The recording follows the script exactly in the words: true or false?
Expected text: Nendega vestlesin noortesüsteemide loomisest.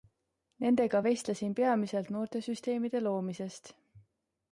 false